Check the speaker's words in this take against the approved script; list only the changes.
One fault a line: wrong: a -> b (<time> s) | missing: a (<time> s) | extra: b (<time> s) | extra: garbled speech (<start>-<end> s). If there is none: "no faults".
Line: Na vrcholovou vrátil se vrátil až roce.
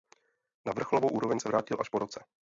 wrong: vrátil -> úroveň (1.1 s)
extra: po (1.9 s)